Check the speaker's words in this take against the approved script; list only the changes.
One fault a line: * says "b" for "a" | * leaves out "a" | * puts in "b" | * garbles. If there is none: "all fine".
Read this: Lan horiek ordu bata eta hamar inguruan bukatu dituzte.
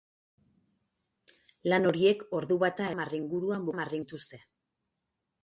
* leaves out "eta"
* says "hamar" for "bukatu"